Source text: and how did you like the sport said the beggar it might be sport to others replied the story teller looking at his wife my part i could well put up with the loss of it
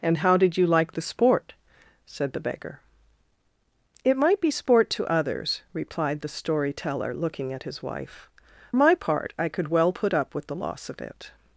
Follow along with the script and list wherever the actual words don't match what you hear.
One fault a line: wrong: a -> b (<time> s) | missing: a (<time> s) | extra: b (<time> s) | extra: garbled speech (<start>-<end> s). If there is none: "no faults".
no faults